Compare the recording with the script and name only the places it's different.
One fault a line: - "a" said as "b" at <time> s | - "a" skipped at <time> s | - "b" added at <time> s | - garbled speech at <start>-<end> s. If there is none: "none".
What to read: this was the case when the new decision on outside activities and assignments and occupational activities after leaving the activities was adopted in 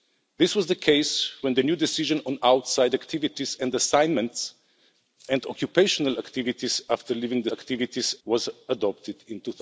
none